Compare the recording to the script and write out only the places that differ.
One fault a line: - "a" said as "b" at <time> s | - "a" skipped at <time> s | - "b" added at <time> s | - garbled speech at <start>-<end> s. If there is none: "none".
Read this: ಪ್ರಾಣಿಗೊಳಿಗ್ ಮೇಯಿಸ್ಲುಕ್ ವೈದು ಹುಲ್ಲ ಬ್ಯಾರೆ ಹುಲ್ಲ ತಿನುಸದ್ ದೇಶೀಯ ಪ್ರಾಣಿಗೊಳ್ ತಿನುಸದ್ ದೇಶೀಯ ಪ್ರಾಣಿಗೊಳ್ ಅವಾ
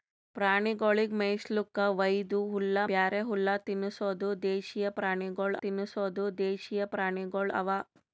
none